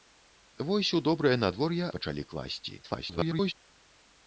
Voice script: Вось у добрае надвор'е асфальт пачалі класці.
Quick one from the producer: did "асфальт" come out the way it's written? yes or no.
no